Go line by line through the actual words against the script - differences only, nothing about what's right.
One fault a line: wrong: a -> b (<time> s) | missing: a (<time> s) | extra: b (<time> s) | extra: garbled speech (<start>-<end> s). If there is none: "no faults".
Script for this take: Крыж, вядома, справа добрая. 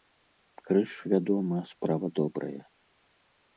no faults